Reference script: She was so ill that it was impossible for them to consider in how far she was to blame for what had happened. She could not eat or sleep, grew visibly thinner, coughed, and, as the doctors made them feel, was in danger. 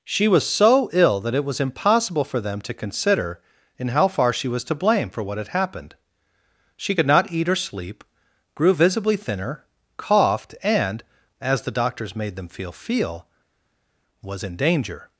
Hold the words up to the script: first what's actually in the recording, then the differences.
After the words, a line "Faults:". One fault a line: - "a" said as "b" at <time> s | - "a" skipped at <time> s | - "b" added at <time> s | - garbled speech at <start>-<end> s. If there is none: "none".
She was so ill that it was impossible for them to consider in how far she was to blame for what had happened. She could not eat or sleep, grew visibly thinner, coughed, and, as the doctors made them feel feel, was in danger.
Faults:
- "feel" added at 12.7 s